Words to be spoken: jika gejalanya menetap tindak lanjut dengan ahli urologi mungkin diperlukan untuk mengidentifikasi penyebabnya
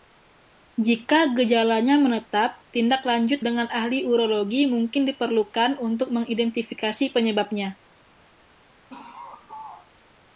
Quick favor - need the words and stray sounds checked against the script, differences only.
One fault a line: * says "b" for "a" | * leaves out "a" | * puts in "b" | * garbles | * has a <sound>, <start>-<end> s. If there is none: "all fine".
* has a laugh, 8.9-9.9 s